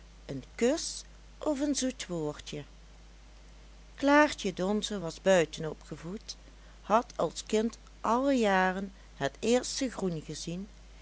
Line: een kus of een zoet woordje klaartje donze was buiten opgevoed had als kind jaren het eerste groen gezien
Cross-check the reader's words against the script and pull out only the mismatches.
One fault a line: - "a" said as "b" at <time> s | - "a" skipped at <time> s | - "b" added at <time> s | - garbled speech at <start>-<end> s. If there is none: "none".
- "alle" added at 8.0 s